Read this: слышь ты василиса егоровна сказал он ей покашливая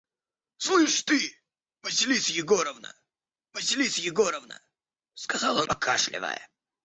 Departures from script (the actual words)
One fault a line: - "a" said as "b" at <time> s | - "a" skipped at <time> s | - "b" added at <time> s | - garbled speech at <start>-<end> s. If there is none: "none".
- "василиса егоровна" added at 3.5 s
- "ей" skipped at 5.7 s